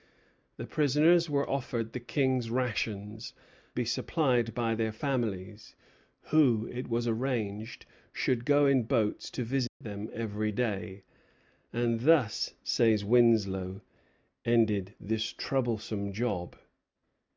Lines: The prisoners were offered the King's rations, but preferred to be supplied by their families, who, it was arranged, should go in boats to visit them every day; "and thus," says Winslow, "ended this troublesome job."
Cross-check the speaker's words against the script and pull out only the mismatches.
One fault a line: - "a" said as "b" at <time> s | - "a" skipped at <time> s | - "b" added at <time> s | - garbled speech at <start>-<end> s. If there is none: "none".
- "but preferred to" skipped at 3.4 s